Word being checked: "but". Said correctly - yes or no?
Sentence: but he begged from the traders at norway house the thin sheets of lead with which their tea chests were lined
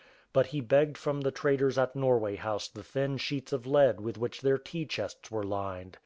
yes